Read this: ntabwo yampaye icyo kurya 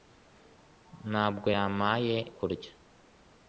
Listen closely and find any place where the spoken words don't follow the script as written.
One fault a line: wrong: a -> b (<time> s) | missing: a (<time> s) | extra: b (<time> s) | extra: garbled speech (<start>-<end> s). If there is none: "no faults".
missing: icyo (2.2 s)